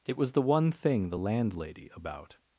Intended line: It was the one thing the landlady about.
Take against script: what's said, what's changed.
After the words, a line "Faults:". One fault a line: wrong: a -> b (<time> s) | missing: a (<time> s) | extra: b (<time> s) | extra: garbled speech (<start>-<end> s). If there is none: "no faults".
It was the one thing the landlady about.
Faults:
no faults